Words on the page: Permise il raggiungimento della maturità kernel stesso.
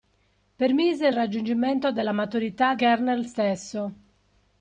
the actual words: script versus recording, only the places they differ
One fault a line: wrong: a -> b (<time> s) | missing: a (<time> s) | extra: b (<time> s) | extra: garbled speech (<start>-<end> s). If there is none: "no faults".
no faults